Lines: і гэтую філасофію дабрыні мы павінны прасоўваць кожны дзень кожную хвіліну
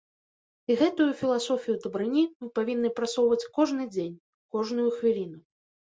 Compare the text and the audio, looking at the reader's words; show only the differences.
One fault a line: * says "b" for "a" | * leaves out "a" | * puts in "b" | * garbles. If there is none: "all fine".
all fine